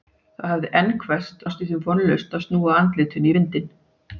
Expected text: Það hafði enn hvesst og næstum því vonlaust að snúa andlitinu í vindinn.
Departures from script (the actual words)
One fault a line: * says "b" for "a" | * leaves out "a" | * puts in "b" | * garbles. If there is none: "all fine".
* leaves out "og"